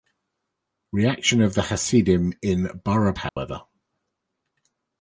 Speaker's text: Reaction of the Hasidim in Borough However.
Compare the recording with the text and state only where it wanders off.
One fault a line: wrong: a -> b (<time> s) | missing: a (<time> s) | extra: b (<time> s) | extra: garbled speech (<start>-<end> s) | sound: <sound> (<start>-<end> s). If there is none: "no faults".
sound: dropout (3.3-3.4 s)